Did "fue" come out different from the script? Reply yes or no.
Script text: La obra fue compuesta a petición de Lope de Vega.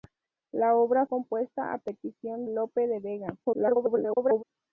yes